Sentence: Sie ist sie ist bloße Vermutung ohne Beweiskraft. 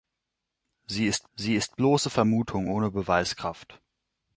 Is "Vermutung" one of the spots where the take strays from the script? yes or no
no